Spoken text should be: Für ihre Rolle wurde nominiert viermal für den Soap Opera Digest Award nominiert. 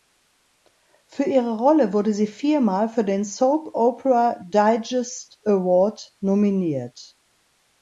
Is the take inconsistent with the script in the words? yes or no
yes